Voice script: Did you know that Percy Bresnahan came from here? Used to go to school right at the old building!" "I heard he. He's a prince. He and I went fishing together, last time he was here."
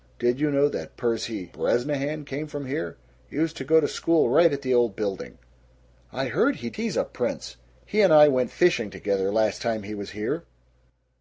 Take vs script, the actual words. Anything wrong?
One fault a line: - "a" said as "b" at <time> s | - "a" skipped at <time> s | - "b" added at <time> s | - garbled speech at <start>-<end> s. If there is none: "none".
none